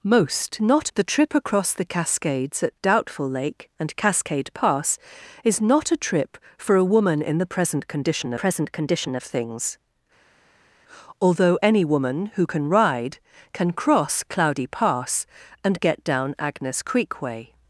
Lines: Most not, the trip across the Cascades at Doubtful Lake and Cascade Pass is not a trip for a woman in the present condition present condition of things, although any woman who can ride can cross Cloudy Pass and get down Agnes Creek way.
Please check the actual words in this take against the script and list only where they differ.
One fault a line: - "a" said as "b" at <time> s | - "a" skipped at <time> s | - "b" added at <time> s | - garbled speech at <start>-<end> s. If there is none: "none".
none